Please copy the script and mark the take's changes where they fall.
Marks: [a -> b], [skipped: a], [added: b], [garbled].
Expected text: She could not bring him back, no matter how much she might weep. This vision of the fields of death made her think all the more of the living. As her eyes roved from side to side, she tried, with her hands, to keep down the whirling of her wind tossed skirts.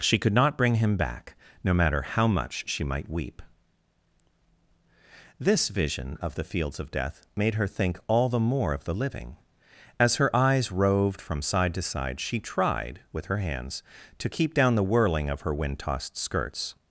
She could not bring him back, no matter how much she might weep. This vision of the fields of death made her think all the more of the living. As her eyes roved from side to side, she tried, with her hands, to keep down the whirling of her wind tossed skirts.